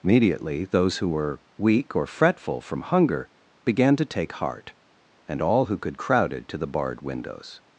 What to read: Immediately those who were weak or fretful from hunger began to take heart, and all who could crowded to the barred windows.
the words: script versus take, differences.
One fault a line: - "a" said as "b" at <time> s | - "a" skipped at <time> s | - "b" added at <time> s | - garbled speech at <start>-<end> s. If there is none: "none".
none